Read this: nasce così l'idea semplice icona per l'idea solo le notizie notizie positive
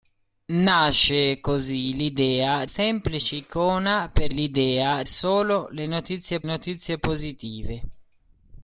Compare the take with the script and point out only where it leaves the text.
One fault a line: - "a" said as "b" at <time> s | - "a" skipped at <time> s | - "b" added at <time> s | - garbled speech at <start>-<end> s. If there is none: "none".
none